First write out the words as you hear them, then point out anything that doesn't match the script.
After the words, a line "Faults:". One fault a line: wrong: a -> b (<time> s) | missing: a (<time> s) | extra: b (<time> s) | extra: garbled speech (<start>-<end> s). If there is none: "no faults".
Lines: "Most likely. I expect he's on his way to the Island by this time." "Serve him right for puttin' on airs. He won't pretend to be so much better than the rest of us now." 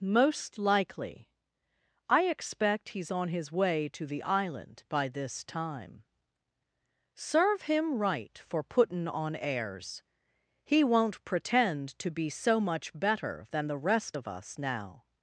"Most likely. I expect he's on his way to the Island by this time." "Serve him right for puttin' on airs. He won't pretend to be so much better than the rest of us now."
Faults:
no faults